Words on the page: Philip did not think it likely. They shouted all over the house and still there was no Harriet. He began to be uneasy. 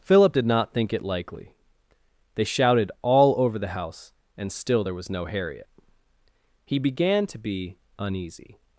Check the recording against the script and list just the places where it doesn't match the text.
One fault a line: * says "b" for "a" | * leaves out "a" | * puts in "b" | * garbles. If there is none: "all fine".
all fine